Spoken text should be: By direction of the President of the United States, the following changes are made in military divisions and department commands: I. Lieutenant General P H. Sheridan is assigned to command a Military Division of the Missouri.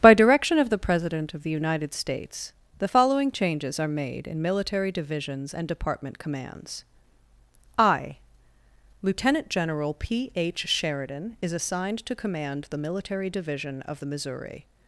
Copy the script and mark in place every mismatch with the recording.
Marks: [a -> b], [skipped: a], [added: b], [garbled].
By direction of the President of the United States, the following changes are made in military divisions and department commands: I. Lieutenant General P H. Sheridan is assigned to command [a -> the] Military Division of the Missouri.